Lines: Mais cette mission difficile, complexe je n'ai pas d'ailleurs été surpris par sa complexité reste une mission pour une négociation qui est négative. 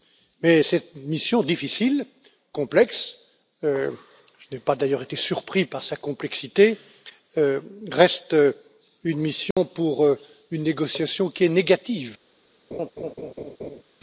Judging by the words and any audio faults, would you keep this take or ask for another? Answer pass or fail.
fail